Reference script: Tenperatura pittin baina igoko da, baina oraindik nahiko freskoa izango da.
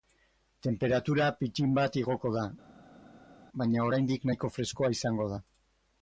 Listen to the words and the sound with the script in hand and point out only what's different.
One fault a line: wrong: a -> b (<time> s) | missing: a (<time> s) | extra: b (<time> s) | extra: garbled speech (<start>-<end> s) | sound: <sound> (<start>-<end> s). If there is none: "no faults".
wrong: baina -> bat (1.8 s)